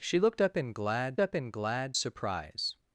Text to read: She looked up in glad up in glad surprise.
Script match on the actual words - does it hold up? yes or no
yes